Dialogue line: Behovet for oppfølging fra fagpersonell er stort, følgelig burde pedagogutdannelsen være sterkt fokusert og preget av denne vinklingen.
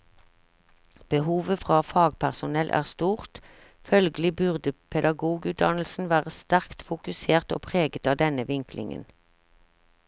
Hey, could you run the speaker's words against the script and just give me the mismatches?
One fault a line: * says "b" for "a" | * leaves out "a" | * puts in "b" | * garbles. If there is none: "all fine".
* leaves out "for oppfølging"